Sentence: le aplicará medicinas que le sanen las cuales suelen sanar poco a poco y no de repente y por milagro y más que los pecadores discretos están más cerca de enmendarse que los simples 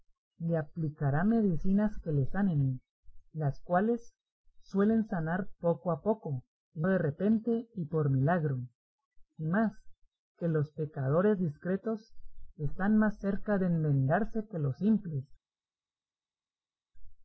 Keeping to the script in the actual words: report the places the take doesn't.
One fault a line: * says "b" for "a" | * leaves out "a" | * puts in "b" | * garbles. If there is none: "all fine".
* leaves out "no"